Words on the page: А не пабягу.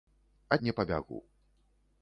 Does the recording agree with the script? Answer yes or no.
yes